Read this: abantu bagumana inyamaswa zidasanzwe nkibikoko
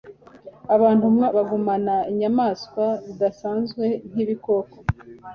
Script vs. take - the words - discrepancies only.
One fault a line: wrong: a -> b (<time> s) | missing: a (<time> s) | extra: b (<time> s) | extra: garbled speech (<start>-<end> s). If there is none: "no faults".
no faults